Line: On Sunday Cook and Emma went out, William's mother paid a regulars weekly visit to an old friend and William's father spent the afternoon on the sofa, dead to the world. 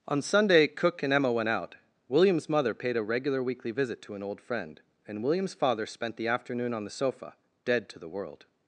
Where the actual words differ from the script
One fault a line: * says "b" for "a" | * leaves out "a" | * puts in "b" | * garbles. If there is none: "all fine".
* says "regular" for "regulars"